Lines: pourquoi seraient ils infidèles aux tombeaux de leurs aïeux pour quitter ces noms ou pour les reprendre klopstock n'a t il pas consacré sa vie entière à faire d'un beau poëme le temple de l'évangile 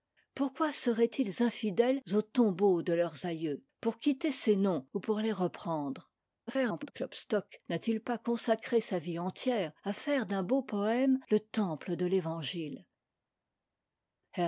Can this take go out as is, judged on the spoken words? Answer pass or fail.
fail